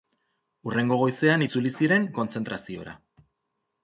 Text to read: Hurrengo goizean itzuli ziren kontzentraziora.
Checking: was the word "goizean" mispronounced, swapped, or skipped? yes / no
no